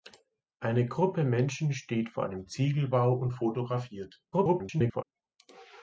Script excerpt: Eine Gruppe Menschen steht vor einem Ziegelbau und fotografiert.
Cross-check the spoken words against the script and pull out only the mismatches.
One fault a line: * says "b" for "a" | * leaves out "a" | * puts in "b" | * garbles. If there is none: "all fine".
* garbles